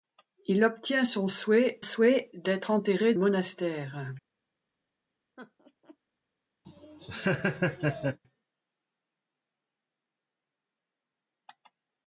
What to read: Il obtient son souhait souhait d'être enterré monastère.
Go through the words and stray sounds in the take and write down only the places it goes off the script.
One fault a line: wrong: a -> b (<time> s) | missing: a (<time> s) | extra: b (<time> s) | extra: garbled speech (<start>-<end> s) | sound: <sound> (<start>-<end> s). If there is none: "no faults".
sound: laugh (5.4-6.0 s)
sound: laugh (6.6-8.2 s)